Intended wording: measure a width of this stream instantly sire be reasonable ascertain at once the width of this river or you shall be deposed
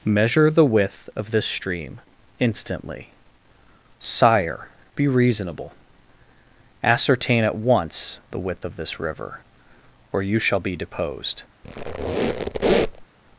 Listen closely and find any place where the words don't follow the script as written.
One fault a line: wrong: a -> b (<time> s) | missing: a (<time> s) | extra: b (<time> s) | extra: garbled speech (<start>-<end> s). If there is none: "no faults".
wrong: a -> the (0.5 s)